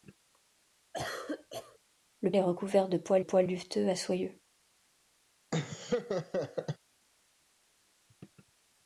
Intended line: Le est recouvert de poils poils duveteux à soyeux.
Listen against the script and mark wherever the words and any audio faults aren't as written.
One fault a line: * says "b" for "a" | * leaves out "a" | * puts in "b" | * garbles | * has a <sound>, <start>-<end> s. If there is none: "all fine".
* has a cough, 0.9-1.8 s
* has a laugh, 5.5-6.8 s